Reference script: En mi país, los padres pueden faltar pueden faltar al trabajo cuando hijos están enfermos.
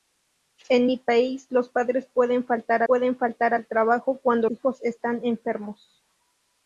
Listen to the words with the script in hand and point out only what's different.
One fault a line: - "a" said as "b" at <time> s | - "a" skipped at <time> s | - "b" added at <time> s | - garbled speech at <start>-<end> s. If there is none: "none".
none